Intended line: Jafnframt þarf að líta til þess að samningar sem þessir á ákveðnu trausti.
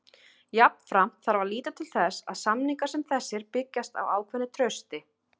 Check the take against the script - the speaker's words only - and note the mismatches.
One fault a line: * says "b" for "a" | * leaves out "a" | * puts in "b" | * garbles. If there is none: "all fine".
* puts in "byggjast"